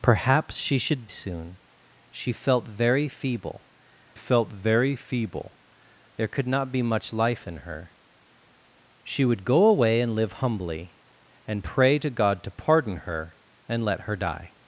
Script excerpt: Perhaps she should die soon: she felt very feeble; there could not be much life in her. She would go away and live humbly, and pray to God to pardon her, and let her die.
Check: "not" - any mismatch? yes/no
no